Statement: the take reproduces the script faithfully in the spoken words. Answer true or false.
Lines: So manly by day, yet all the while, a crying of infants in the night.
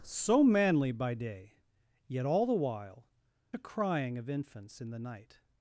true